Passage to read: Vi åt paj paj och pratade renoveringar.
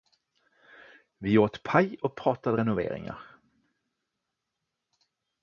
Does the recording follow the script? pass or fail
fail